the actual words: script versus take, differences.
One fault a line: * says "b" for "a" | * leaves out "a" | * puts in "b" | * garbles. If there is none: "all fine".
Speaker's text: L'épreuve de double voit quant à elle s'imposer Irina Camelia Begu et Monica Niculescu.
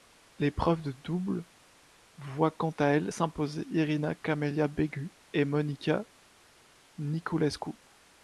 all fine